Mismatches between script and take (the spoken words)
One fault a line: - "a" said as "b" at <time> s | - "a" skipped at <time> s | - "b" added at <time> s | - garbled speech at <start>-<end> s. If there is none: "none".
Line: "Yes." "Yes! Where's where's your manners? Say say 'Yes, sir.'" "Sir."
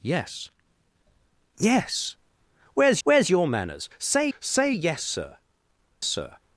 none